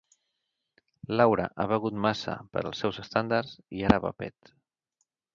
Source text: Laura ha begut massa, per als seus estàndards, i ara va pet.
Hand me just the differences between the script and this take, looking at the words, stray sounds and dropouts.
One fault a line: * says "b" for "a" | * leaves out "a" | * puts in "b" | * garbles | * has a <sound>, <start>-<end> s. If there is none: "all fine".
all fine